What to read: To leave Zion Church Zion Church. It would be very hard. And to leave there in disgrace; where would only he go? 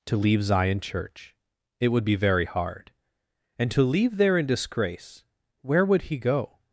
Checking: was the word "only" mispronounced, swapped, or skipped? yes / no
yes